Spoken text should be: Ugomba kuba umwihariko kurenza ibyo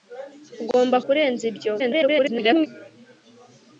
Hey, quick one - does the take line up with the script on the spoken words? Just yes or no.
no